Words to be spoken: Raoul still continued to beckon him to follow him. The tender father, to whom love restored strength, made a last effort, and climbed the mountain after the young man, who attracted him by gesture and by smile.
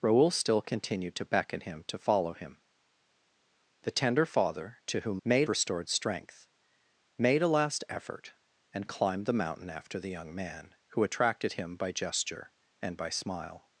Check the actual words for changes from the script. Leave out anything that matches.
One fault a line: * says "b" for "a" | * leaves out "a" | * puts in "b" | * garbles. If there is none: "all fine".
* says "made" for "love"